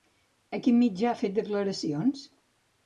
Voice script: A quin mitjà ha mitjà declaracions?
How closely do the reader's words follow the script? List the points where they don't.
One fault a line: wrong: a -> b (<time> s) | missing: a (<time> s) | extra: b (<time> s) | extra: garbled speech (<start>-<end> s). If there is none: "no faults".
wrong: mitjà -> fet (1.2 s)